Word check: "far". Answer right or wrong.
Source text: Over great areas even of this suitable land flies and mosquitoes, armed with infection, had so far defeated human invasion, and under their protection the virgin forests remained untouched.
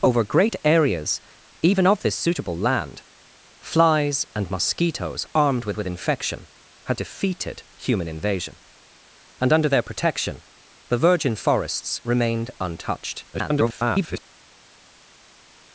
wrong